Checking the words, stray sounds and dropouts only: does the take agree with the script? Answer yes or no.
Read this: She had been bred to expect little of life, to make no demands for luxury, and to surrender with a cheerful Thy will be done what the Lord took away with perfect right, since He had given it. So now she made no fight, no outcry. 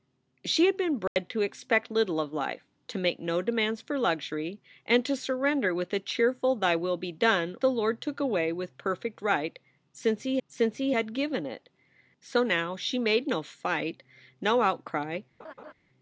no